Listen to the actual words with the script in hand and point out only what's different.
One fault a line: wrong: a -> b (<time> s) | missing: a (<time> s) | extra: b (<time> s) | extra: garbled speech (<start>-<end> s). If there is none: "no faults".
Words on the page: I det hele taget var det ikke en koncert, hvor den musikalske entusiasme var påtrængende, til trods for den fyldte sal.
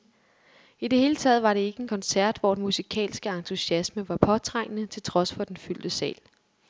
no faults